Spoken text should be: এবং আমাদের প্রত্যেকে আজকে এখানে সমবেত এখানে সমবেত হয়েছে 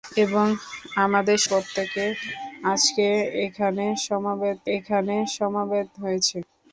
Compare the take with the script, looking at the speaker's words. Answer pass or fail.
pass